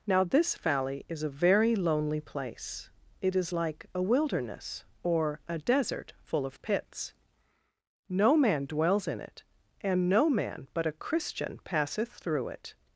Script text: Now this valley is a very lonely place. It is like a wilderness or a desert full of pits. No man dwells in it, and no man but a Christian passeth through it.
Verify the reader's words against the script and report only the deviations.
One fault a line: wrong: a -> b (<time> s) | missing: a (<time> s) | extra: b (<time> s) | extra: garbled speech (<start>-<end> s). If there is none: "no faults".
no faults